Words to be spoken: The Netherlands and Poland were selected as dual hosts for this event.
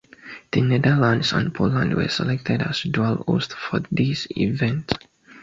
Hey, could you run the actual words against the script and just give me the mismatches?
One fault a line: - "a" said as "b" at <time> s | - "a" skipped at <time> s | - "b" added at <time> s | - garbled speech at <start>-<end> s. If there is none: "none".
none